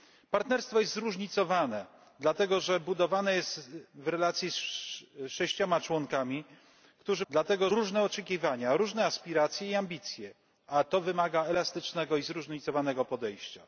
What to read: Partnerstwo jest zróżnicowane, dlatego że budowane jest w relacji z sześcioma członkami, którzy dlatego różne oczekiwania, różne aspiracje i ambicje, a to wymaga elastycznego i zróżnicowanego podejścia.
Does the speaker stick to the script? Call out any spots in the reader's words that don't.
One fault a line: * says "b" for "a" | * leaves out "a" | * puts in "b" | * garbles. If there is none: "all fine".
all fine